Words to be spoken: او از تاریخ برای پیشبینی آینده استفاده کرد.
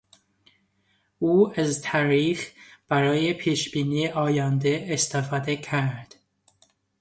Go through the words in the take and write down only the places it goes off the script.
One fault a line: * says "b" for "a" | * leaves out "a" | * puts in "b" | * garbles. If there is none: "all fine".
all fine